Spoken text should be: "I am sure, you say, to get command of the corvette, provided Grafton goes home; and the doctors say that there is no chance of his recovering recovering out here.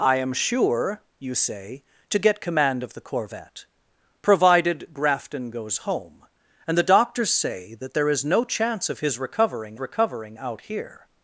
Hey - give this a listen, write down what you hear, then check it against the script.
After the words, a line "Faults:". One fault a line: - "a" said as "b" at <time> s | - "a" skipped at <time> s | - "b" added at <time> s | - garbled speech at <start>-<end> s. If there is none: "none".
"I am sure, you say, to get command of the corvette, provided Grafton goes home; and the doctors say that there is no chance of his recovering recovering out here.
Faults:
none